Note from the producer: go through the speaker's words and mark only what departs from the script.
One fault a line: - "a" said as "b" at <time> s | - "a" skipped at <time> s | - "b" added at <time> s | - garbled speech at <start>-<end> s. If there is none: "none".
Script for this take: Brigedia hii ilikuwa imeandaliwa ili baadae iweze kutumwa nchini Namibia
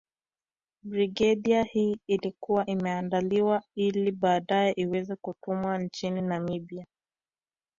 none